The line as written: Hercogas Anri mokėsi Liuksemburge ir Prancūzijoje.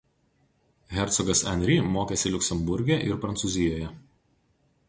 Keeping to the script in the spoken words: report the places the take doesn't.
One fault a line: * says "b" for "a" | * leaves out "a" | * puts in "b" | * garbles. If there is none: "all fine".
all fine